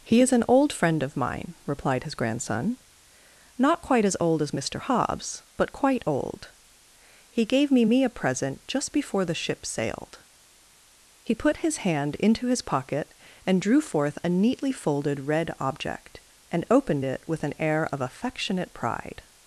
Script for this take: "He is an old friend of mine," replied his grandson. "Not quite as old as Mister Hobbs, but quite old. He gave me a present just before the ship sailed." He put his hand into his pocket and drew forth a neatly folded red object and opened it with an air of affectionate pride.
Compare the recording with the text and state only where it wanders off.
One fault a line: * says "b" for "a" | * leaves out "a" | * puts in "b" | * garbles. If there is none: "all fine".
* puts in "me"